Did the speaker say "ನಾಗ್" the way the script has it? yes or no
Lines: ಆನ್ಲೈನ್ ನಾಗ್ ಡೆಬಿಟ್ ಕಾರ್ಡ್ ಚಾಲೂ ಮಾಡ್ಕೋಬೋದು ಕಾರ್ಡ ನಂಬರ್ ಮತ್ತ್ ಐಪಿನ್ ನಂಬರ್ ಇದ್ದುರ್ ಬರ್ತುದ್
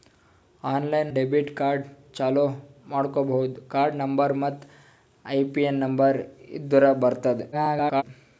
no